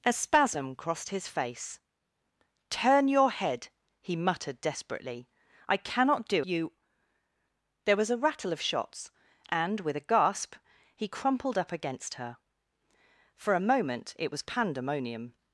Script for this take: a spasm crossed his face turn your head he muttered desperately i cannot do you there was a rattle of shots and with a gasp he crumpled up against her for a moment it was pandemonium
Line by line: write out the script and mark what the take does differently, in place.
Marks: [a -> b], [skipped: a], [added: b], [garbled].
a spasm crossed his face turn your head he muttered desperately i cannot do you there was a rattle of shots and with a gasp he crumpled up against her for a moment it was pandemonium